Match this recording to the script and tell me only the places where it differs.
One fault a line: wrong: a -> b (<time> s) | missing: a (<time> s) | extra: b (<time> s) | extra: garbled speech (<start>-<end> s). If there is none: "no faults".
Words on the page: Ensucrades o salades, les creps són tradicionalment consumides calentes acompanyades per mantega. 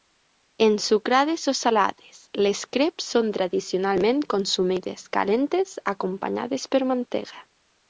no faults